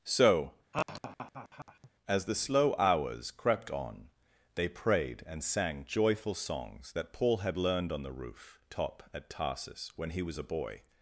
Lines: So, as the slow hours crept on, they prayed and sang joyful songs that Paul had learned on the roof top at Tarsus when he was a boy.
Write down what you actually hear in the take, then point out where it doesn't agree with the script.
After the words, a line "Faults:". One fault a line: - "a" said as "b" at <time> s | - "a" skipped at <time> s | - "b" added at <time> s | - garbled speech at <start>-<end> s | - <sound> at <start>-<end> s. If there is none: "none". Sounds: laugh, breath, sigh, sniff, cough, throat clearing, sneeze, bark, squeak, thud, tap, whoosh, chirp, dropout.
So, as the slow hours crept on, they prayed and sang joyful songs that Paul had learned on the roof top at Tarsus when he was a boy.
Faults:
- laugh at 0.7-1.9 s